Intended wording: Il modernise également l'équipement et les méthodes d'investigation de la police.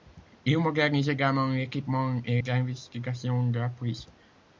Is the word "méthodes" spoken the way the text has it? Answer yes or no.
no